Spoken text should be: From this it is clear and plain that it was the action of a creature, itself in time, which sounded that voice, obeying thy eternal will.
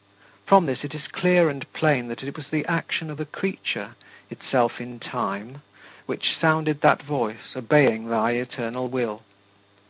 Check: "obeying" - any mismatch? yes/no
no